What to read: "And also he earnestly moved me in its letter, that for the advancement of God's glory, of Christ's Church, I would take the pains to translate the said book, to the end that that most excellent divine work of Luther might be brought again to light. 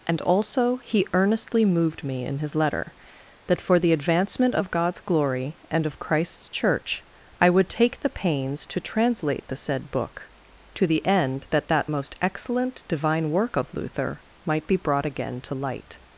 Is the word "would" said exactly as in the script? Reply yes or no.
yes